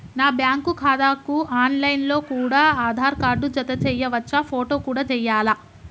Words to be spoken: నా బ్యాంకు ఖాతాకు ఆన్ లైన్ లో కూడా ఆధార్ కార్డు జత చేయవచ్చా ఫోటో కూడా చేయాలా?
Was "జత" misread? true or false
false